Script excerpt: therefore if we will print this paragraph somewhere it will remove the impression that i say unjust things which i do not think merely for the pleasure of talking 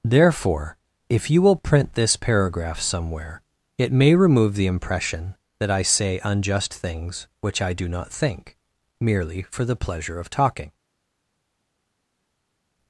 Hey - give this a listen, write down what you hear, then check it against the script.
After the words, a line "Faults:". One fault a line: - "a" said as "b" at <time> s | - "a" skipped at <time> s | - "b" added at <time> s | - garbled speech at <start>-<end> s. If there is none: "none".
therefore if you will print this paragraph somewhere it may remove the impression that i say unjust things which i do not think merely for the pleasure of talking
Faults:
- "we" said as "you" at 1.3 s
- "will" said as "may" at 3.9 s